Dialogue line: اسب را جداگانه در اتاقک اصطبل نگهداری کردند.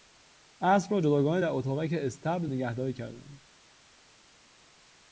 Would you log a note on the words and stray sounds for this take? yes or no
no